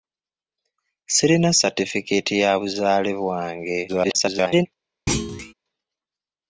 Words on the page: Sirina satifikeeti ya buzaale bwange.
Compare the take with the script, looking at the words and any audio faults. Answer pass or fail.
fail